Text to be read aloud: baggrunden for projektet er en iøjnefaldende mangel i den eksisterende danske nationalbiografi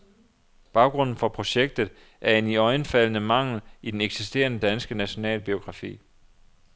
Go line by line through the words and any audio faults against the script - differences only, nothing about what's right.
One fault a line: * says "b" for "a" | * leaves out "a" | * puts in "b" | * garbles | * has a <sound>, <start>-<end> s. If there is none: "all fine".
all fine